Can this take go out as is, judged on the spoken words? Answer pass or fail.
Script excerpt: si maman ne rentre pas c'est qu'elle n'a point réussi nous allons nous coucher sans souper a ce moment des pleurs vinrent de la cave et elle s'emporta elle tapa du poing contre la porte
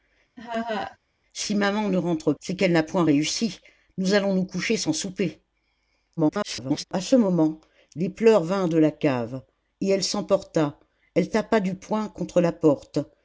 fail